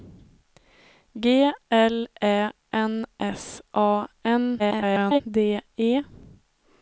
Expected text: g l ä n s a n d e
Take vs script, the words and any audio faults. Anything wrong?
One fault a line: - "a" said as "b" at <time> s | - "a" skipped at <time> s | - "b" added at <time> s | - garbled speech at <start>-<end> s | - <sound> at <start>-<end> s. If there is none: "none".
- garbled speech at 4.6-5.2 s